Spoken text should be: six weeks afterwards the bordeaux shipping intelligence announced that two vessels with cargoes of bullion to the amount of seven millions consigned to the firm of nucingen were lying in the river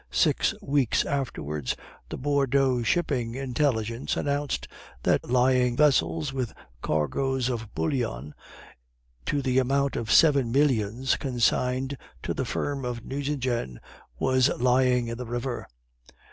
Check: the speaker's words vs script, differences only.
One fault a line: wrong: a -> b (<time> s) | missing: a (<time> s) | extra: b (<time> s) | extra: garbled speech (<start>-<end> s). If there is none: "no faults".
wrong: two -> lying (5.3 s)